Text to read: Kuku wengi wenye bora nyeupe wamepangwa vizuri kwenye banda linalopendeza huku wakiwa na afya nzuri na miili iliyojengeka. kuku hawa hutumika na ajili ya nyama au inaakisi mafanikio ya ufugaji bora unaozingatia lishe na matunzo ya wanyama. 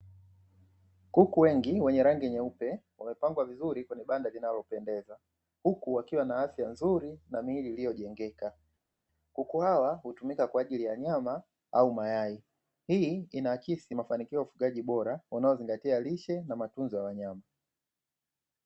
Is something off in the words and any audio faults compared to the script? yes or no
yes